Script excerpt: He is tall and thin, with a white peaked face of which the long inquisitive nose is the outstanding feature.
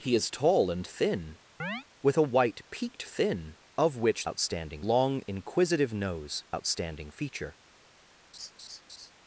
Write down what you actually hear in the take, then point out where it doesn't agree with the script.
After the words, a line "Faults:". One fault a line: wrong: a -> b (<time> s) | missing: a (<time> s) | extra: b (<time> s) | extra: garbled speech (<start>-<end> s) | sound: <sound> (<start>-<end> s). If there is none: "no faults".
He is tall and thin, with a white peaked thin of which outstanding long inquisitive nose outstanding feature.
Faults:
sound: chirp (1.6-1.8 s)
wrong: face -> thin (3.1 s)
wrong: the -> outstanding (4.2 s)
missing: is the (6.5 s)
sound: laugh (8.3-9.1 s)